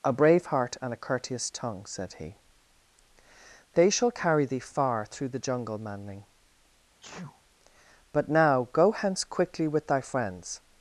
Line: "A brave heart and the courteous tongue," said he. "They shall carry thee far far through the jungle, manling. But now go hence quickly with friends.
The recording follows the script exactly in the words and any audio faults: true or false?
false